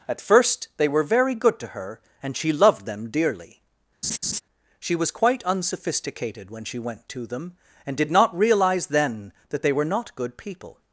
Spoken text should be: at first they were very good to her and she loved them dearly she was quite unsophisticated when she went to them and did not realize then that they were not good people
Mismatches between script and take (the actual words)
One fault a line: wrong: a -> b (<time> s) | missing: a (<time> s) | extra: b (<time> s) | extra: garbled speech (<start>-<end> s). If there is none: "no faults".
no faults